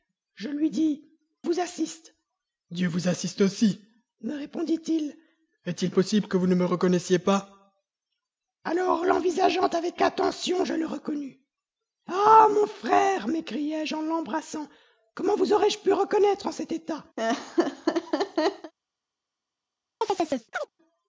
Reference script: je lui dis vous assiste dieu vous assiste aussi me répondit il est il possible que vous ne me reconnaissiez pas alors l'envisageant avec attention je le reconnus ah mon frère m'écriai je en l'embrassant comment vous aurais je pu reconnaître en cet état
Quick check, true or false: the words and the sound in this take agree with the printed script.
false